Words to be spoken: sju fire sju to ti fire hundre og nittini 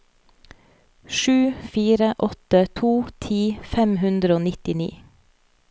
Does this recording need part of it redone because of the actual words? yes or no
yes